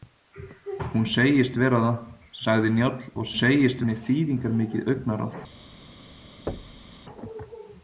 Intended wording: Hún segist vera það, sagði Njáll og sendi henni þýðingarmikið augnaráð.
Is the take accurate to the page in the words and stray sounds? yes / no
no